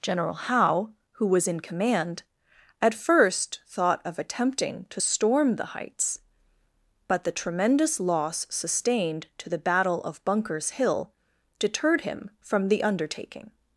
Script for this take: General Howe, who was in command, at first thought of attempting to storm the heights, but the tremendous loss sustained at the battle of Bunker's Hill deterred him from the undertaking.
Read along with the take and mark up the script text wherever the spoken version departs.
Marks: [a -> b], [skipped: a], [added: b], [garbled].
General Howe, who was in command, at first thought of attempting to storm the heights, but the tremendous loss sustained [at -> to] the battle of Bunker's Hill deterred him from the undertaking.